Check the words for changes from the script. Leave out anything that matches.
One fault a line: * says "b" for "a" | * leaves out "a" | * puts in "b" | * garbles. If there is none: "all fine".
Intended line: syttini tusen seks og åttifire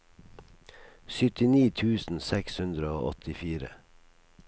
* puts in "hundre"